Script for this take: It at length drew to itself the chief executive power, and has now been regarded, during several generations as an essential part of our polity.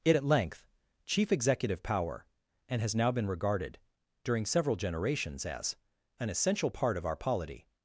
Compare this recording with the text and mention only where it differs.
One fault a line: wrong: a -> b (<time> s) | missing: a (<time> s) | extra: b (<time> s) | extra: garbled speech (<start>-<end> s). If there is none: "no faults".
missing: drew to itself the (0.7 s)